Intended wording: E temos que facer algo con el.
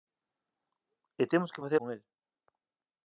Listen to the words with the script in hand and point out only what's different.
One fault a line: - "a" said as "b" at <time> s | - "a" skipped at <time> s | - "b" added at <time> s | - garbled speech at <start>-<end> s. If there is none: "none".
- "algo" skipped at 1.8 s